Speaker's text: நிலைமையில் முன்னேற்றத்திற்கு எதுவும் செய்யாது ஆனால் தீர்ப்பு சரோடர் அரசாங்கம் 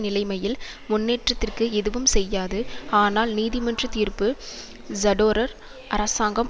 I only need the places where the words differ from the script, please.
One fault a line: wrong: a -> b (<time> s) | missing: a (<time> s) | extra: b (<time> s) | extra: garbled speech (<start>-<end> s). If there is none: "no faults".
extra: நீதிமன்ற (3.4 s)